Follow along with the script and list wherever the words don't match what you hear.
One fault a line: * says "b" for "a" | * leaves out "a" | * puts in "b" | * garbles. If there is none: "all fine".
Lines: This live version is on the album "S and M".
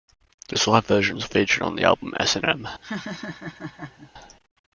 * puts in "featured"